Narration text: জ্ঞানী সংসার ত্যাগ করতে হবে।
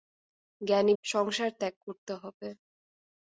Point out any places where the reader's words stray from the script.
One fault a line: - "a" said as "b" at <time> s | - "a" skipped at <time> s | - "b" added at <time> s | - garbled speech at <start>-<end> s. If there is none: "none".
none